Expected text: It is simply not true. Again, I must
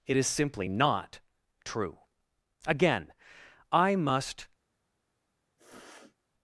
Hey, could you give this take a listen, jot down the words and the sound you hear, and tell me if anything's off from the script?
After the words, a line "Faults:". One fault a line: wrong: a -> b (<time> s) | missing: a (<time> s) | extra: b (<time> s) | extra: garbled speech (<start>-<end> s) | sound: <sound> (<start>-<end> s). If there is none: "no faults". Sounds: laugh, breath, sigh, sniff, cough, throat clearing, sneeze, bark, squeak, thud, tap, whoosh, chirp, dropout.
It is simply not true. Again, I must
Faults:
sound: sniff (5.6-6.2 s)